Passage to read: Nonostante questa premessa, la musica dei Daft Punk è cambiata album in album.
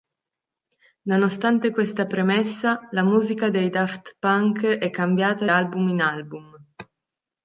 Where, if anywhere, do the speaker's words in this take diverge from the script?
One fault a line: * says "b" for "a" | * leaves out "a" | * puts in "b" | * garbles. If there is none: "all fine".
all fine